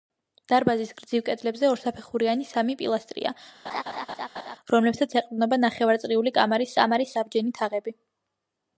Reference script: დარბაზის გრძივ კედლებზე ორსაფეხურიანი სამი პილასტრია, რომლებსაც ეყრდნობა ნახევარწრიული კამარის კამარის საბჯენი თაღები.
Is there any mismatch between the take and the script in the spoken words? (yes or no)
no